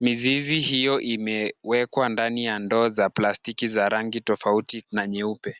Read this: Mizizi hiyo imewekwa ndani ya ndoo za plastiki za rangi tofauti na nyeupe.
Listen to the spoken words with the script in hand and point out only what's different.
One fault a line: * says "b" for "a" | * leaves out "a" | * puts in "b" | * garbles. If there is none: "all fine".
all fine